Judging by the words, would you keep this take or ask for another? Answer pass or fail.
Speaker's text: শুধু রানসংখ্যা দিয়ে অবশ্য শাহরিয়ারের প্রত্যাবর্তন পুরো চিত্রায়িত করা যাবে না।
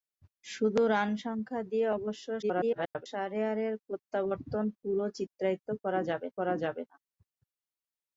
fail